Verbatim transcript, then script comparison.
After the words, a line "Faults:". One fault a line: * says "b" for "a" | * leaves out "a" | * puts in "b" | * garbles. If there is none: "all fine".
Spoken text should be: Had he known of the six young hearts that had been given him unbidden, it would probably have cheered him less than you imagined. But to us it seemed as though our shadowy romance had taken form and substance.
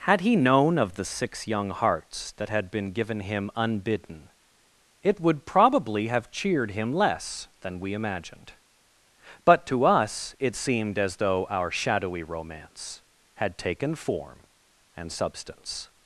Had he known of the six young hearts that had been given him unbidden, it would probably have cheered him less than we imagined. But to us it seemed as though our shadowy romance had taken form and substance.
Faults:
* says "we" for "you"